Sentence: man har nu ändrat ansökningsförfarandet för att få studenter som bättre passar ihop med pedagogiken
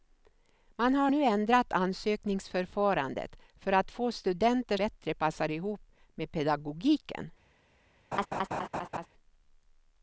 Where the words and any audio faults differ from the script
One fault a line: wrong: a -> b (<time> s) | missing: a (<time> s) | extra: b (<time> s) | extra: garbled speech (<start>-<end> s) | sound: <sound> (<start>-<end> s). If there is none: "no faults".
missing: som (4.8 s)
sound: laugh (8.1-9.1 s)